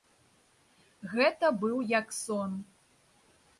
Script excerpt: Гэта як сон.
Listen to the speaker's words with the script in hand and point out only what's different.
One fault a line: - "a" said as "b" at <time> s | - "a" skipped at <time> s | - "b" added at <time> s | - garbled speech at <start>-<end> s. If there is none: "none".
- "быў" added at 1.6 s